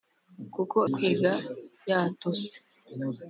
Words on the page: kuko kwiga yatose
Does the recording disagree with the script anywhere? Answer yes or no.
no